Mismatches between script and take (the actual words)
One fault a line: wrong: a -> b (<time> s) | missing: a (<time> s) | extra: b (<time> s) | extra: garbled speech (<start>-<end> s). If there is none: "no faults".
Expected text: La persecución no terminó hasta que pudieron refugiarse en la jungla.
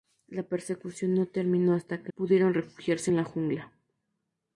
no faults